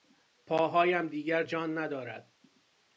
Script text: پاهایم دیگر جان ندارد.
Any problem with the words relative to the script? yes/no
no